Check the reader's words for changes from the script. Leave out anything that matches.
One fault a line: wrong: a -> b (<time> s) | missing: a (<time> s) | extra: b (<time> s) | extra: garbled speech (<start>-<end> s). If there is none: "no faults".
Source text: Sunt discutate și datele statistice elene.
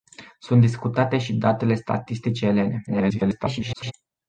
extra: garbled speech (2.9-3.9 s)